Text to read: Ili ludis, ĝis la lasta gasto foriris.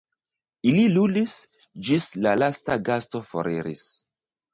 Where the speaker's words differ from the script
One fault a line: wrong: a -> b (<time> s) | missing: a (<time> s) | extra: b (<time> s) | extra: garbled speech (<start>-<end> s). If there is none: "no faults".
no faults